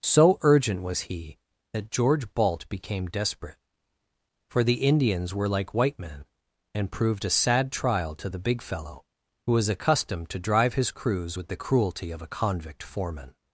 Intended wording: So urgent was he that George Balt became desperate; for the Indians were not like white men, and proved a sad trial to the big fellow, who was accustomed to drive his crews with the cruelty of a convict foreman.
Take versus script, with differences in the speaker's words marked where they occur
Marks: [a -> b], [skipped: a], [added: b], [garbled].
So urgent was he that George Balt became desperate; for the Indians were [skipped: not] like white men, and proved a sad trial to the big fellow, who was accustomed to drive his crews with the cruelty of a convict foreman.